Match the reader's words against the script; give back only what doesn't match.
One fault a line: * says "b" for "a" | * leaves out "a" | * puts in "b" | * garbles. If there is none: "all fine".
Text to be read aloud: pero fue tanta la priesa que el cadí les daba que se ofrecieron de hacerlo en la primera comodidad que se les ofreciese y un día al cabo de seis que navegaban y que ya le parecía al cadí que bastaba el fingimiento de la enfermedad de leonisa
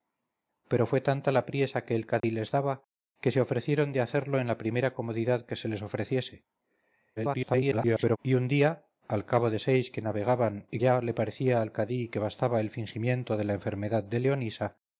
* garbles
* leaves out "que"